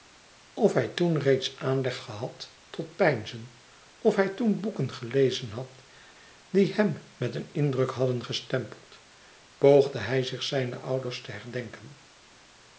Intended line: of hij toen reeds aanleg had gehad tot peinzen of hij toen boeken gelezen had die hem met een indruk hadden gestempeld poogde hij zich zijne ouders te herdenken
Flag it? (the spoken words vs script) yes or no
yes